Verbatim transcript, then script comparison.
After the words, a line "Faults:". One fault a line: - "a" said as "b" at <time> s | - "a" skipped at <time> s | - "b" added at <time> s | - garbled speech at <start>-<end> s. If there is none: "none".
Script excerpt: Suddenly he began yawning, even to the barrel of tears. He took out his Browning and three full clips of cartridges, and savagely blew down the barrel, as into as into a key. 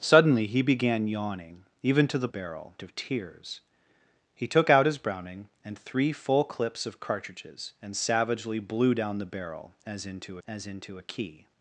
Suddenly he began yawning, even to the barrel of tears. He took out his Browning and three full clips of cartridges, and savagely blew down the barrel, as into as into a key.
Faults:
none